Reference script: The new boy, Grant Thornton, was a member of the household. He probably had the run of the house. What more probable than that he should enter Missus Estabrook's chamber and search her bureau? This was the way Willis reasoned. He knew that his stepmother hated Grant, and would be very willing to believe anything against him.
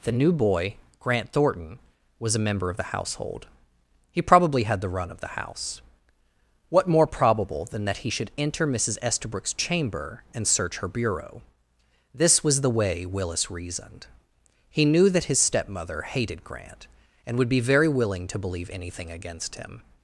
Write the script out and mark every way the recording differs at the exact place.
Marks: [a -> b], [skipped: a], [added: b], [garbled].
The new boy, Grant Thornton, was a member of the household. He probably had the run of the house. What more probable than that he should enter Missus Estabrook's chamber and search her bureau? This was the way Willis reasoned. He knew that his stepmother hated Grant, and would be very willing to believe anything against him.